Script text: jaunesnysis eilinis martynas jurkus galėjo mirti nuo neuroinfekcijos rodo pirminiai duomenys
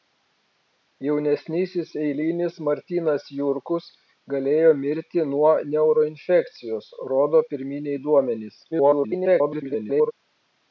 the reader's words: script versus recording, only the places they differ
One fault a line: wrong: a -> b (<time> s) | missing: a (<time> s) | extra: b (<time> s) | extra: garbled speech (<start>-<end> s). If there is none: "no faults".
extra: garbled speech (8.7-10.1 s)